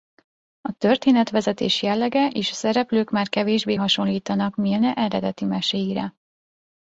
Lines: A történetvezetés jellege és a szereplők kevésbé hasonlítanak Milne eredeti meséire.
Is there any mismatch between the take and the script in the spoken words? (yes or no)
yes